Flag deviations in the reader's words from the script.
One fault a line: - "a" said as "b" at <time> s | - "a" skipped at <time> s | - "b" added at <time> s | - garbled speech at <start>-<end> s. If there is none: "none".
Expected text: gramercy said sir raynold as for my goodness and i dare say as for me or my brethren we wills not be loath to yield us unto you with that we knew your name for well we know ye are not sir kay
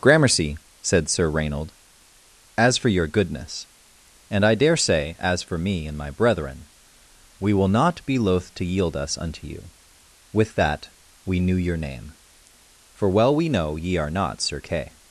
- "my" said as "your" at 2.9 s
- "or" said as "and" at 5.8 s
- "wills" said as "will" at 7.5 s